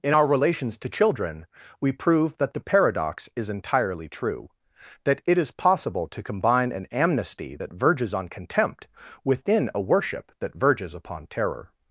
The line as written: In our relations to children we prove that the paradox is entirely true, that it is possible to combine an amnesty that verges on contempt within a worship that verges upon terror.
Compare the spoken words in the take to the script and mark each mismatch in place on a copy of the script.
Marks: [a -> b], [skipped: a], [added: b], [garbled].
In our relations to children we prove that the paradox is entirely true, that it is possible to combine an amnesty that verges on contempt within a worship that verges upon terror.